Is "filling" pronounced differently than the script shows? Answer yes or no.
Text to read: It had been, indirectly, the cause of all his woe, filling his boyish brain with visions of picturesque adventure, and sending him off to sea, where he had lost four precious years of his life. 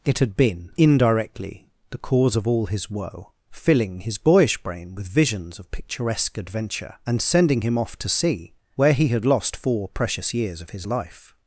no